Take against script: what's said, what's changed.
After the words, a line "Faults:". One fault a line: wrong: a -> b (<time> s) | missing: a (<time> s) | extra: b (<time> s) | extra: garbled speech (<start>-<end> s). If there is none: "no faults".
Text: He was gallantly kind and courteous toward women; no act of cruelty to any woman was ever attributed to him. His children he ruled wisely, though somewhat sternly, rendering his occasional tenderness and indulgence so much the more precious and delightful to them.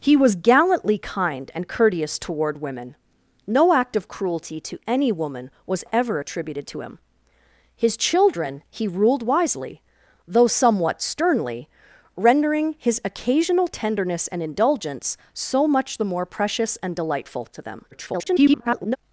He was gallantly kind and courteous toward women; no act of cruelty to any woman was ever attributed to him. His children he ruled wisely, though somewhat sternly, rendering his occasional tenderness and indulgence so much the more precious and delightful to them. [garbled]
Faults:
extra: garbled speech (17.9-19.0 s)